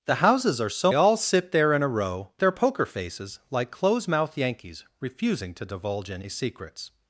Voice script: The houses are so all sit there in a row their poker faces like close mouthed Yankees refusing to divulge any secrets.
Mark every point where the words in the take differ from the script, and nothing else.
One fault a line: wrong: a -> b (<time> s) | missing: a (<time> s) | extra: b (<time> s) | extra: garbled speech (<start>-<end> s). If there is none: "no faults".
no faults